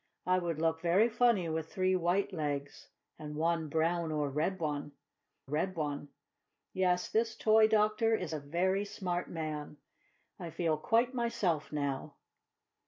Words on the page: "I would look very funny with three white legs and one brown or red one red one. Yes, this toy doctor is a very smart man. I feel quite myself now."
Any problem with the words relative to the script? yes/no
no